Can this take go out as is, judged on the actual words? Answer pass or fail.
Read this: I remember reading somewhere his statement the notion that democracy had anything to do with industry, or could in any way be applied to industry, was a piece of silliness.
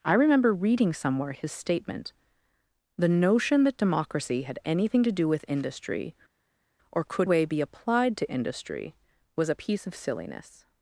fail